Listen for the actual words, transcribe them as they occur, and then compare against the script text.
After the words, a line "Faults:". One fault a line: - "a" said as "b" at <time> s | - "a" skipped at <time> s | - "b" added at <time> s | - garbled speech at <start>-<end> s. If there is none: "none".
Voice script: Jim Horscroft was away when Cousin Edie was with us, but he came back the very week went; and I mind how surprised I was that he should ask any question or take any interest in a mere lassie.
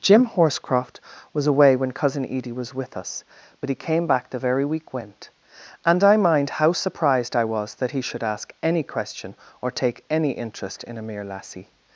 Jim Horscroft was away when Cousin Edie was with us, but he came back the very week went; and I mind how surprised I was that he should ask any question or take any interest in a mere lassie.
Faults:
none